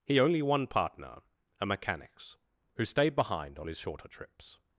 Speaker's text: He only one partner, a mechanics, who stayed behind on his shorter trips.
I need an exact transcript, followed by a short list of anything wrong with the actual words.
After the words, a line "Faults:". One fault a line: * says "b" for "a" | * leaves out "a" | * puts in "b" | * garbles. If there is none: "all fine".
He only one partner, a mechanics, who stayed behind on his shorter trips.
Faults:
all fine